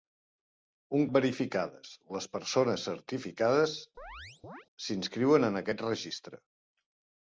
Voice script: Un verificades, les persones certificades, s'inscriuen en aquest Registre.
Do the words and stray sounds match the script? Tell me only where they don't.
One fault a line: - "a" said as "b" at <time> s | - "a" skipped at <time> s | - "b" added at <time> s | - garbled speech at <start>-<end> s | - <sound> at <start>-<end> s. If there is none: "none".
- chirp at 4.0-4.7 s